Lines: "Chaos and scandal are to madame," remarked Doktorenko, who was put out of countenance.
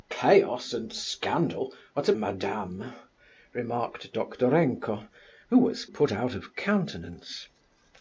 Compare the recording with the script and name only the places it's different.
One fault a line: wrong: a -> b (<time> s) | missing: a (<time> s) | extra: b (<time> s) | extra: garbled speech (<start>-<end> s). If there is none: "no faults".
no faults